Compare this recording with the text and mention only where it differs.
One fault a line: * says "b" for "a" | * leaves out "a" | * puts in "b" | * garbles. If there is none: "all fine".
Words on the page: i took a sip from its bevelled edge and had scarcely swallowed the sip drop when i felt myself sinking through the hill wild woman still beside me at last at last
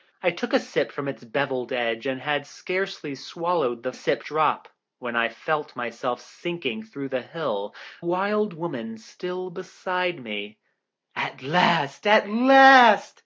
all fine